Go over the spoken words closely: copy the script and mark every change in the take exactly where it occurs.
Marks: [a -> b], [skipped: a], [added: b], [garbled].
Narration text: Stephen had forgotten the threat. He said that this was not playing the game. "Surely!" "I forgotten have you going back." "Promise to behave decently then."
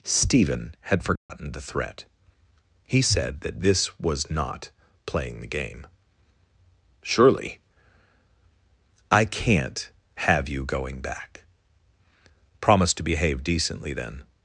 Stephen had forgotten the threat. He said that this was not playing the game. "Surely!" "I [forgotten -> can't] have you going back." "Promise to behave decently then."